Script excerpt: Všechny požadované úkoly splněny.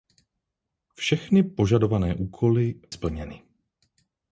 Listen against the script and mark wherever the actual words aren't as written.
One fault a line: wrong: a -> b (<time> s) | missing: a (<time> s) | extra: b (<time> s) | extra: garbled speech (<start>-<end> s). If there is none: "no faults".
no faults